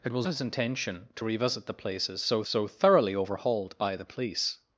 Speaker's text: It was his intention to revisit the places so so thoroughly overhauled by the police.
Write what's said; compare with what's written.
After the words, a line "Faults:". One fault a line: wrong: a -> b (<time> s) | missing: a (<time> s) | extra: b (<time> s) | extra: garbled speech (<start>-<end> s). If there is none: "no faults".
It was his intention to revisit the places so so thoroughly overhauled by the police.
Faults:
no faults